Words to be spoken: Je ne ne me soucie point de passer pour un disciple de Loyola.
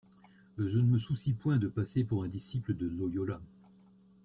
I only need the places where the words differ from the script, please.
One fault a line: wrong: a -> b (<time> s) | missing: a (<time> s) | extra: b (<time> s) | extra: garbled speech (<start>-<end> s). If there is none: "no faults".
missing: ne (0.9 s)